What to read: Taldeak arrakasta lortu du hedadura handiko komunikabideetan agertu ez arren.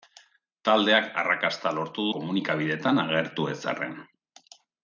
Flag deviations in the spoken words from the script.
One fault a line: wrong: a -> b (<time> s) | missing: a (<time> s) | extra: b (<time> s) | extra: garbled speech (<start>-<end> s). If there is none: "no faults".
missing: du hedadura handiko (2.0 s)